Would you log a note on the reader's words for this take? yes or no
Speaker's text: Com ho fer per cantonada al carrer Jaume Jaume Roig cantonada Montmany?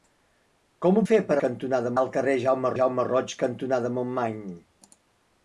no